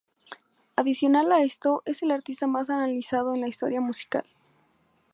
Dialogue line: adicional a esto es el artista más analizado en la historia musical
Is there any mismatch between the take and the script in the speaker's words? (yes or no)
no